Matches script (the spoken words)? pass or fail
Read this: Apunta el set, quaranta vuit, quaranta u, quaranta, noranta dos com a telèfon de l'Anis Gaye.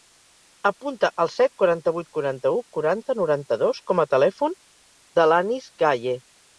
pass